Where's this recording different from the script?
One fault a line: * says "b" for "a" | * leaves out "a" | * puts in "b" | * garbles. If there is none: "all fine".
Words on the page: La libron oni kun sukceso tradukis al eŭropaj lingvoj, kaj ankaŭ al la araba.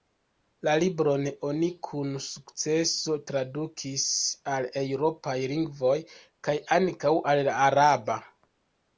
all fine